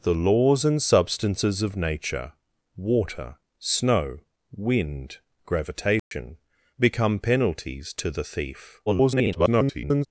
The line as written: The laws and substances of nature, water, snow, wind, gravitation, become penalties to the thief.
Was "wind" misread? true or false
false